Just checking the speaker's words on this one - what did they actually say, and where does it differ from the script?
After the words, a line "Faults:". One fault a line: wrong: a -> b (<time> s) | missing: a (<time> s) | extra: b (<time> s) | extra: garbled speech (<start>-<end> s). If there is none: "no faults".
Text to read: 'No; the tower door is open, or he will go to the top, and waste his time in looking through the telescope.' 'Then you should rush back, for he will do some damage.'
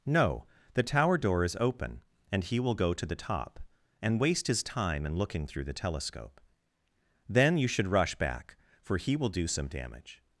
'No; the tower door is open, and he will go to the top, and waste his time in looking through the telescope.' 'Then you should rush back, for he will do some damage.'
Faults:
wrong: or -> and (2.3 s)